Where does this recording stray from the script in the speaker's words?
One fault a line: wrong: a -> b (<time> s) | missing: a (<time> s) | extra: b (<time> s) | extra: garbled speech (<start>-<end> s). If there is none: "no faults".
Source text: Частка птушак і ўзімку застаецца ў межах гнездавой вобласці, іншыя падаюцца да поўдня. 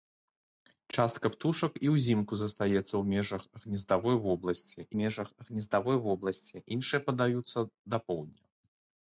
extra: межах гнездавой вобласці (5.0 s)